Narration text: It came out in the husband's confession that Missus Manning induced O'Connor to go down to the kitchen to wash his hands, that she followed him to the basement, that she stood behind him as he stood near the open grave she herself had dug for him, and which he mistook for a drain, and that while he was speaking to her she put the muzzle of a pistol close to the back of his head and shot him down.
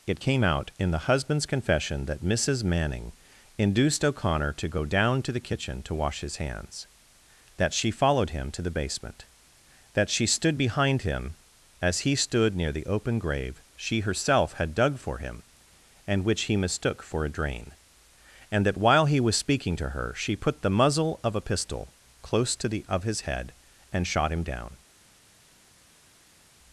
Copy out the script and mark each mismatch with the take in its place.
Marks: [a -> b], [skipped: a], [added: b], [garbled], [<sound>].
It came out in the husband's confession that Missus Manning induced O'Connor to go down to the kitchen to wash his hands, that she followed him to the basement, that she stood behind him as he stood near the open grave she herself had dug for him, and which he mistook for a drain, and that while he was speaking to her she put the muzzle of a pistol close to the [skipped: back] of his head and shot him down.